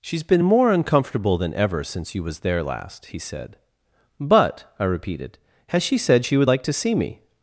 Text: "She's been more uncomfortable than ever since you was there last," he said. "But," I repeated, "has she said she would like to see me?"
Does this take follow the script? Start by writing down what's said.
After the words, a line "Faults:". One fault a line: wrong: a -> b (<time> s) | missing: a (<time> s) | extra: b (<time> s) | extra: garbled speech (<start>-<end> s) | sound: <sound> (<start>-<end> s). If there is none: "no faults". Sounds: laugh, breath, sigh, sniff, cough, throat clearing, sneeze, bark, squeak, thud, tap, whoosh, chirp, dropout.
"She's been more uncomfortable than ever since you was there last," he said. "But," I repeated, "has she said she would like to see me?"
Faults:
no faults